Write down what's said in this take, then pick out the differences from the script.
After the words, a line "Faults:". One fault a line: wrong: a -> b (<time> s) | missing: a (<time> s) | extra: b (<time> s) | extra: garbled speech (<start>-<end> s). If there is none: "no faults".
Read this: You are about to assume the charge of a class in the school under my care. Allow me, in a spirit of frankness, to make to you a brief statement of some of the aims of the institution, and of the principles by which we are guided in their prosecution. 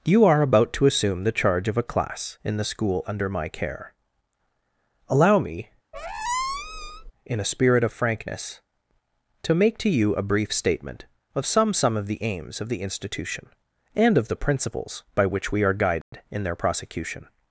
You are about to assume the charge of a class in the school under my care. Allow me, in a spirit of frankness, to make to you a brief statement of some some of the aims of the institution, and of the principles by which we are guided in their prosecution.
Faults:
extra: some (11.7 s)